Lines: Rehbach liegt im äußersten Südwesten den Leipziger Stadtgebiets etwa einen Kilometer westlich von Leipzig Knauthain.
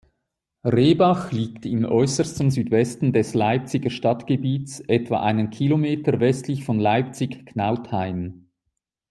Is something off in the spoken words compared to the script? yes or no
yes